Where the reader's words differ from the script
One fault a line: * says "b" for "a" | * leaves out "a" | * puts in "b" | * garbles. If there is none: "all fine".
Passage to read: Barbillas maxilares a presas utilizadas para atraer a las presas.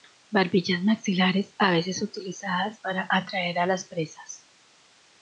* says "veces" for "presas"